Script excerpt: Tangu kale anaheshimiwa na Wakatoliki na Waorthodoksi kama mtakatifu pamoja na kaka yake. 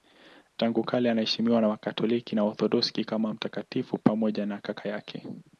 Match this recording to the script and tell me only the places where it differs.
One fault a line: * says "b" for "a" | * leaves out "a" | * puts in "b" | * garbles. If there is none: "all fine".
all fine